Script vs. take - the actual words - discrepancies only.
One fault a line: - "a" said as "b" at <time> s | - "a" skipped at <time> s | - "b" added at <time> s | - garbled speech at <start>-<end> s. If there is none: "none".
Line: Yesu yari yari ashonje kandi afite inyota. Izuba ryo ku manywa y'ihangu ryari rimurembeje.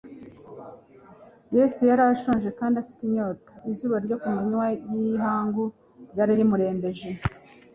- "yari" skipped at 2.0 s